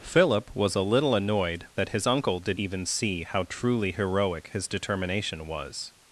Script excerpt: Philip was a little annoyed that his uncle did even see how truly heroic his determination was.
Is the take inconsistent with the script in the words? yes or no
no